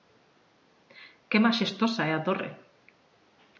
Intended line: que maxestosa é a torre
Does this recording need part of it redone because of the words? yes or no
no